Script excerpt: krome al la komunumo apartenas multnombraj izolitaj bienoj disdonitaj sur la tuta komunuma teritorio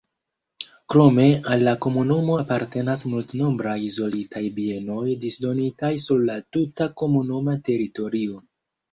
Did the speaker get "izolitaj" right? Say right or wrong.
right